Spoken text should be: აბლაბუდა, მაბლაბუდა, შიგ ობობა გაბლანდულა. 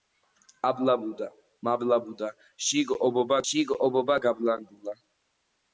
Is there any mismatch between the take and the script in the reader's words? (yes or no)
yes